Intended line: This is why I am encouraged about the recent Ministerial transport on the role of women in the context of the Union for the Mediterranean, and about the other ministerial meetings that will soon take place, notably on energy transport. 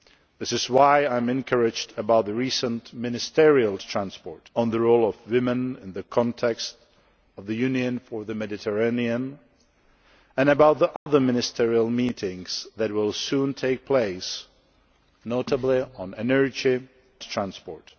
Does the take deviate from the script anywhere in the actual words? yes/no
no